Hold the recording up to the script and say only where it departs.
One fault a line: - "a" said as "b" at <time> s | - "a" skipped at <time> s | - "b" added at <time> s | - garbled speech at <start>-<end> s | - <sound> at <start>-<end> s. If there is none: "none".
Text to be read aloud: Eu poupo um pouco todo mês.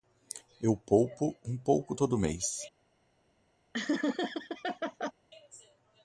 - laugh at 3.7-5.1 s